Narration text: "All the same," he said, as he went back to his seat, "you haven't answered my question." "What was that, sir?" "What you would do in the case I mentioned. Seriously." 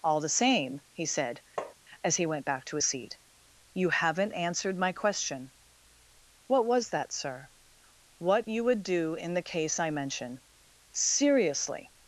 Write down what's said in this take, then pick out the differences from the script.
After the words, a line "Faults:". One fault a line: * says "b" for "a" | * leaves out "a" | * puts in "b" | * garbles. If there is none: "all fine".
"All the same," he said, as he went back to his seat, "you haven't answered my question." "What was that, sir?" "What you would do in the case I mention. Seriously."
Faults:
* says "mention" for "mentioned"